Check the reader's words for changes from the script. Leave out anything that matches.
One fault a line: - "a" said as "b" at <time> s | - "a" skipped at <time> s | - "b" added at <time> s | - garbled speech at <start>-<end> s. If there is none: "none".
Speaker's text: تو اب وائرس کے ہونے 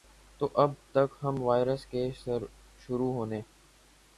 - "تک ہم" added at 0.9 s
- "شروع" added at 2.8 s